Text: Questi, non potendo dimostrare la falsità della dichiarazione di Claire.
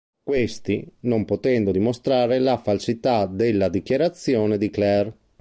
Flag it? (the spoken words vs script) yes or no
no